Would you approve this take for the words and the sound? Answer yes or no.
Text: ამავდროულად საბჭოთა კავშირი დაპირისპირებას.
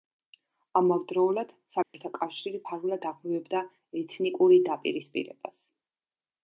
no